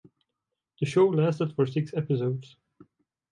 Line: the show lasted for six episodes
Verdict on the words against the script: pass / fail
pass